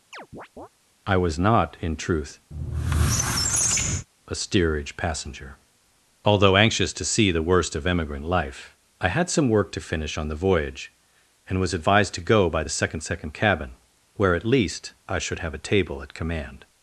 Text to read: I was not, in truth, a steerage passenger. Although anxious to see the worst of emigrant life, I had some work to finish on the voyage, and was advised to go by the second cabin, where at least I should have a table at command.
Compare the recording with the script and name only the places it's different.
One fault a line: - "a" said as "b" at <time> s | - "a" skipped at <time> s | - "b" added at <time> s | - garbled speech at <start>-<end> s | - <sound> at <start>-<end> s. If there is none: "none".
- chirp at 0.1-0.7 s
- squeak at 2.5-4.1 s
- "second" added at 13.0 s